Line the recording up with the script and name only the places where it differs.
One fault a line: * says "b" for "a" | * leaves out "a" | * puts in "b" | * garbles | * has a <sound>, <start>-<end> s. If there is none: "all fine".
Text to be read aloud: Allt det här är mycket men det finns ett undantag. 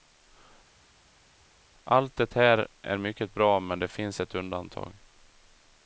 * puts in "bra"